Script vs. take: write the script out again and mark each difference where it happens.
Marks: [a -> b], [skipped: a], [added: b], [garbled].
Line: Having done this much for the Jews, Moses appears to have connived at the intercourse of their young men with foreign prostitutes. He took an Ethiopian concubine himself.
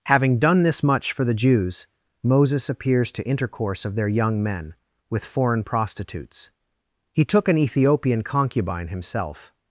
Having done this much for the Jews, Moses appears to [skipped: have connived at the] intercourse of their young men with foreign prostitutes. He took an Ethiopian concubine himself.